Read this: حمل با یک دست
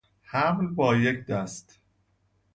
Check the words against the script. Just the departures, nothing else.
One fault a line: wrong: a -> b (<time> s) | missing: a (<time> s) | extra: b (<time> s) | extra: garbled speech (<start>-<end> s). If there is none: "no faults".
no faults